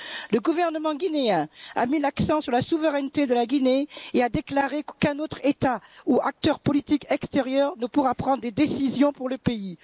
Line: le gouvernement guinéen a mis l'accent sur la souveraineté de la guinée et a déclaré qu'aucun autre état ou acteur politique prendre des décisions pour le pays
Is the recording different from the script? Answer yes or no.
yes